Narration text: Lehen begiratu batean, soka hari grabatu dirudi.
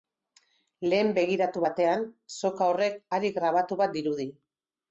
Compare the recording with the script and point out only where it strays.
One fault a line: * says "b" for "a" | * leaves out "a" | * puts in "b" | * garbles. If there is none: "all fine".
* puts in "horrek"
* puts in "bat"